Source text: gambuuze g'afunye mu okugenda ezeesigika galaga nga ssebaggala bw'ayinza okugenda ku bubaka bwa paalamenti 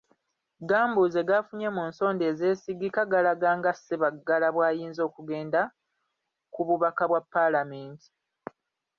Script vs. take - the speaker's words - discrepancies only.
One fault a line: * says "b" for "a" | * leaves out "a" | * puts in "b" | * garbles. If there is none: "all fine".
* says "nsonda" for "okugenda"